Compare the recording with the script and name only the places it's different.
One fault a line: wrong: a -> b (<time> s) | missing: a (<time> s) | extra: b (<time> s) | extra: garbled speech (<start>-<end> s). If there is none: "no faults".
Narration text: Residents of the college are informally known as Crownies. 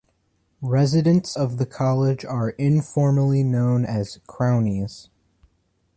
no faults